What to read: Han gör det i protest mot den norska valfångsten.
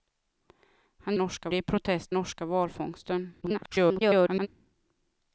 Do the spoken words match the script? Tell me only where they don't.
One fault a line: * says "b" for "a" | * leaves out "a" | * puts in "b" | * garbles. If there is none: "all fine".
* says "norska" for "gör"
* leaves out "mot den"
* garbles